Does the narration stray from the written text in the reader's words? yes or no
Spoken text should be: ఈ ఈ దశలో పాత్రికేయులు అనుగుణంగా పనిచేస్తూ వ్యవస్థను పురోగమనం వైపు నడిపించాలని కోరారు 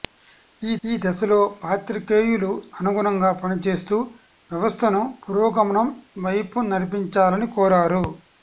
no